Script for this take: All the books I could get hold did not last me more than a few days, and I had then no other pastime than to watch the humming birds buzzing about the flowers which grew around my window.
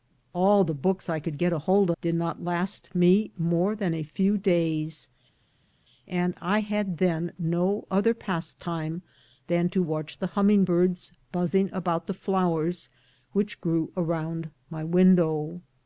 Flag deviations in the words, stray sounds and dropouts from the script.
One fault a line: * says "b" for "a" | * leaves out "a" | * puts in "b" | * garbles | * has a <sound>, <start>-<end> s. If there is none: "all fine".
all fine